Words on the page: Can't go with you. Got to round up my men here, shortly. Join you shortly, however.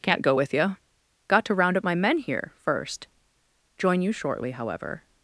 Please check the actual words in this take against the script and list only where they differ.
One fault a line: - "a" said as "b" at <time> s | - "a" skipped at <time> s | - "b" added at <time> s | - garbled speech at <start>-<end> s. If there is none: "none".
- "shortly" said as "first" at 2.6 s